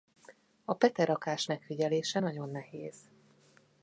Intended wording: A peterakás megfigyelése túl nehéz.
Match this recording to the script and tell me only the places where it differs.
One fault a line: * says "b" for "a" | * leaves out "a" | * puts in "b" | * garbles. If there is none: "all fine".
* says "nagyon" for "túl"